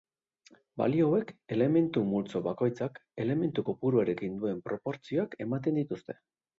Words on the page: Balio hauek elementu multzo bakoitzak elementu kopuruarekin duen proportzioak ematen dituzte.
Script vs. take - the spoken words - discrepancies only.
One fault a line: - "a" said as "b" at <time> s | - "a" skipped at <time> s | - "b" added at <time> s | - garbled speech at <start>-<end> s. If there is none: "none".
none